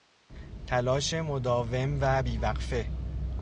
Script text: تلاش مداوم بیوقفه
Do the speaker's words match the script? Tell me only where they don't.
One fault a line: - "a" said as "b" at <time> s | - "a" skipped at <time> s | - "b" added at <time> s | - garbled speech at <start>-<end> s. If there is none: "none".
- "و" added at 2.0 s